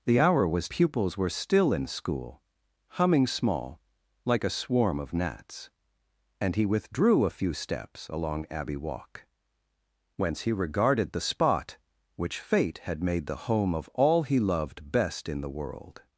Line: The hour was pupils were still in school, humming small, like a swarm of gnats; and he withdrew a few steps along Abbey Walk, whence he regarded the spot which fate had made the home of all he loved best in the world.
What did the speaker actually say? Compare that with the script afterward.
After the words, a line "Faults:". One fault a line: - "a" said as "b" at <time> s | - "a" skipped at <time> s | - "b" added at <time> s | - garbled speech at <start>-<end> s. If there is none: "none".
The hour was pupils were still in school, humming small, like a swarm of gnats; and he withdrew a few steps along Abbey Walk, whence he regarded the spot which fate had made the home of all he loved best in the world.
Faults:
none